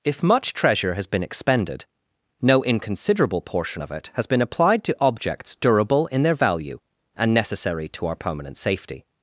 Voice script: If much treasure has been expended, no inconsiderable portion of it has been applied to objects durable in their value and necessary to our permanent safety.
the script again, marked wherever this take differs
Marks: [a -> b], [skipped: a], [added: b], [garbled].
If much treasure has been expended, no inconsiderable portion of it has been applied to objects durable in their value and necessary to our permanent safety.